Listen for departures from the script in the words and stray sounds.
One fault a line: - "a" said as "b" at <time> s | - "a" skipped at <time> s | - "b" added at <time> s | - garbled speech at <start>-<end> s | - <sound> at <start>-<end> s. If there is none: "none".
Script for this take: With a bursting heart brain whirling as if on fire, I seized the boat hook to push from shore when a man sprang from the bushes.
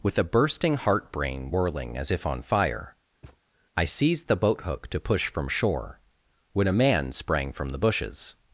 - thud at 3.2-3.4 s